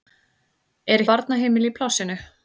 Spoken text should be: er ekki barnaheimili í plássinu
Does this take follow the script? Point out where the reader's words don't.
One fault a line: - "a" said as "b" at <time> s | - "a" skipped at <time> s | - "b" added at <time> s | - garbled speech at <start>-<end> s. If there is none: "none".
- "ekki" skipped at 1.0 s